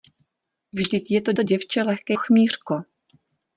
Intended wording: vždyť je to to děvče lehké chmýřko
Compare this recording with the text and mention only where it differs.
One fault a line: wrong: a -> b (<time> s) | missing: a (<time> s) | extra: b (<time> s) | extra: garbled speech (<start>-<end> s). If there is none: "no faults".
no faults